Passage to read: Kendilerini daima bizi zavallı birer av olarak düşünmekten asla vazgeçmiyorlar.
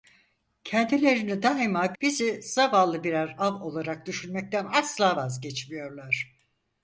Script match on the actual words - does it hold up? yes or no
yes